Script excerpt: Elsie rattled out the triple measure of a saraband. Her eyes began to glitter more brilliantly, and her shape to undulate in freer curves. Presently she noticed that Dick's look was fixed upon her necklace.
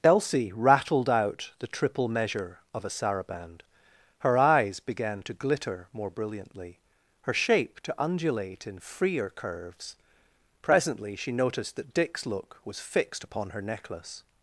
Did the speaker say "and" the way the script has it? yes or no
no